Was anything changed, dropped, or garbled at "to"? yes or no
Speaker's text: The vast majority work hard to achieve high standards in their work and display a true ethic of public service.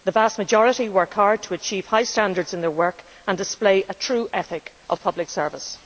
no